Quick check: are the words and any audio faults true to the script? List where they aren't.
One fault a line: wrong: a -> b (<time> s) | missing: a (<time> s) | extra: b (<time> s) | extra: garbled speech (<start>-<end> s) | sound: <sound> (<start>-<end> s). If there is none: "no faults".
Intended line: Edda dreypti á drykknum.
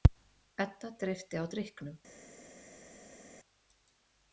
no faults